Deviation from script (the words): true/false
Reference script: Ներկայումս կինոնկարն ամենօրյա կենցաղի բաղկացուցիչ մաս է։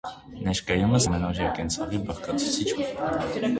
true